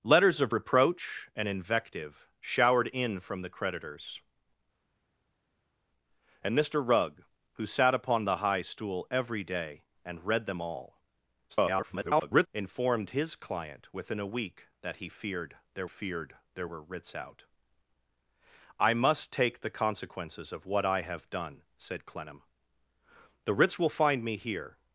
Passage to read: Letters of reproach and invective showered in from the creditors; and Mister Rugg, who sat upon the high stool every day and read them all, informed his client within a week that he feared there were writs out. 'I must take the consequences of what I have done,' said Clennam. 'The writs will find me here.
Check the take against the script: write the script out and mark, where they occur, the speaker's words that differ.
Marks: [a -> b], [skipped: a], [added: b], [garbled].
Letters of reproach and invective showered in from the creditors; and Mister Rugg, who sat upon the high stool every day and read them all, [garbled] informed his client within a week that he feared there [added: feared there] were writs out. 'I must take the consequences of what I have done,' said Clennam. 'The writs will find me here.